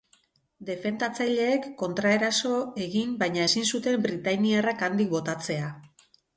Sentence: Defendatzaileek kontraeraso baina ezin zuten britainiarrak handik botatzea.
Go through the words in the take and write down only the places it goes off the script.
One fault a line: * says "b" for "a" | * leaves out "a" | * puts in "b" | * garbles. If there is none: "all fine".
* puts in "egin"